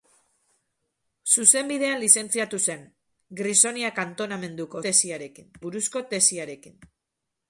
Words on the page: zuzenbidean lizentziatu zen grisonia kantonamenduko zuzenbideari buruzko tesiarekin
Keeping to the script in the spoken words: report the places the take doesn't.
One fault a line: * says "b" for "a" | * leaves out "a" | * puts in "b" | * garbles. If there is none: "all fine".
* says "tesiarekin" for "zuzenbideari"